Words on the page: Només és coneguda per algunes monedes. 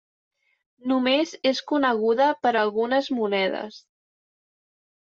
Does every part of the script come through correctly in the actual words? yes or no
yes